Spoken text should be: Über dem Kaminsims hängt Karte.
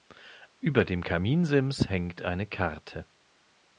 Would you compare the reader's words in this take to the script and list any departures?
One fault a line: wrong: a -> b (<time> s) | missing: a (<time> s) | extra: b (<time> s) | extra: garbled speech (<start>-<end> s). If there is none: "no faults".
extra: eine (2.2 s)